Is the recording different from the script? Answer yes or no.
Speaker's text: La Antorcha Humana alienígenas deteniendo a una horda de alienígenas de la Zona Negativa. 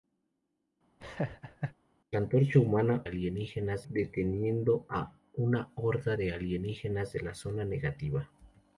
no